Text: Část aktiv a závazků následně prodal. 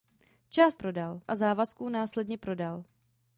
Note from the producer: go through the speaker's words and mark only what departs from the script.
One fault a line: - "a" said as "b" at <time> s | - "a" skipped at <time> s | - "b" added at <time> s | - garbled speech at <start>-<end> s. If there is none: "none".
- "aktiv" said as "prodal" at 0.7 s